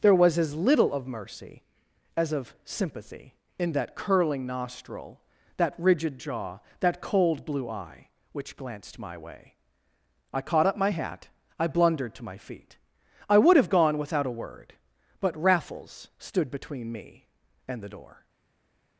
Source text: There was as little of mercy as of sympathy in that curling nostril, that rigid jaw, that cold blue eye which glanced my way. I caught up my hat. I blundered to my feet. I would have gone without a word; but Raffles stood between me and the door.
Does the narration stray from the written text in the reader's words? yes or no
no